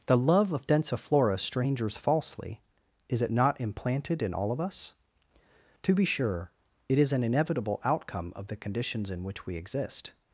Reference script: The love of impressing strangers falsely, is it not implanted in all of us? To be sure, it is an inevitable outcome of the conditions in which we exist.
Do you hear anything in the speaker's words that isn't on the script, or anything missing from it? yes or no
yes